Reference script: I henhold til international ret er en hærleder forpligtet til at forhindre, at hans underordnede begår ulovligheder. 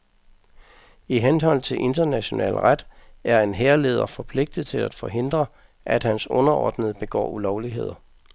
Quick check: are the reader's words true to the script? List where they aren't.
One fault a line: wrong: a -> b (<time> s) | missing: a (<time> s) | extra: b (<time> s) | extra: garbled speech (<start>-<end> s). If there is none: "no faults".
no faults